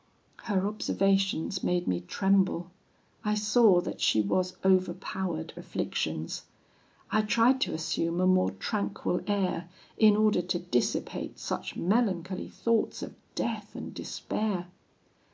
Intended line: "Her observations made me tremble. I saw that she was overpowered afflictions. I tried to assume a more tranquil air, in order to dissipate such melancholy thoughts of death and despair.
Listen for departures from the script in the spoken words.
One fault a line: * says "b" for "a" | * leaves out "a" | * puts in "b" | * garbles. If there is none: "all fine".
all fine